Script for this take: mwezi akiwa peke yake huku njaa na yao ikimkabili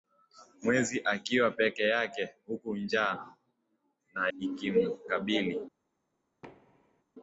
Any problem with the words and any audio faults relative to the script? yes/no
yes